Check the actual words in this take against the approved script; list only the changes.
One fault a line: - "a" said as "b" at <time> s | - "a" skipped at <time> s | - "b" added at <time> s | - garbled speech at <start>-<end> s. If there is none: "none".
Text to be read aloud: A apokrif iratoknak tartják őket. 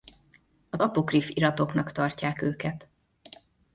none